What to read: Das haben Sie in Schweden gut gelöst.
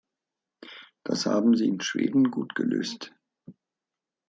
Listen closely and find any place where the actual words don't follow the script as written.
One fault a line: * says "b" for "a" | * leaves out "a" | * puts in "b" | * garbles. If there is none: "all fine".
all fine